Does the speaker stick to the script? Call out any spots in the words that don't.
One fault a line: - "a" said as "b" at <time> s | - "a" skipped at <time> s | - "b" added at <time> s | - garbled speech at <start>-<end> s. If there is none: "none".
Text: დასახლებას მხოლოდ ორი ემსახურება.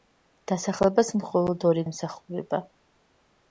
none